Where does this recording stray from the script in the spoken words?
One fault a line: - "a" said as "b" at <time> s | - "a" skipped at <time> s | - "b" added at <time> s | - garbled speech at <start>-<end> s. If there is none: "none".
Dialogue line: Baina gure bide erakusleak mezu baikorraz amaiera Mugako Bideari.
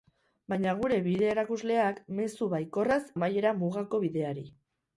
none